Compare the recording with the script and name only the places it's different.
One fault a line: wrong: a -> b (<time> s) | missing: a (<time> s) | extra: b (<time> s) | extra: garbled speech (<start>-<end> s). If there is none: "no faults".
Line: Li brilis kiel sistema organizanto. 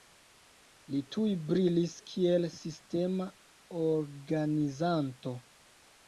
extra: tuj (1.1 s)